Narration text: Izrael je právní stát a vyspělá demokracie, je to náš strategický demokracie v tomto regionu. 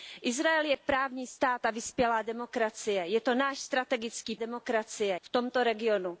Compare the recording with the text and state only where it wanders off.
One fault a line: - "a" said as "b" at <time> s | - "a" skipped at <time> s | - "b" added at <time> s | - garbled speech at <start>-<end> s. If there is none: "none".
none